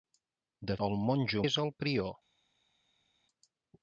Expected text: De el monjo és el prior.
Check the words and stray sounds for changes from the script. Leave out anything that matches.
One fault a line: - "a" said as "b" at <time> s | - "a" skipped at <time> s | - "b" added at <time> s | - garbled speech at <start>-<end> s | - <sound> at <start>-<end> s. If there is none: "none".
none